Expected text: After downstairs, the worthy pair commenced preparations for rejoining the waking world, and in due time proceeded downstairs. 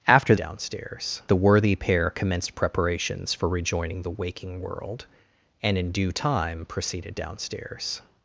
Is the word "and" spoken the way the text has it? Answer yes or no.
yes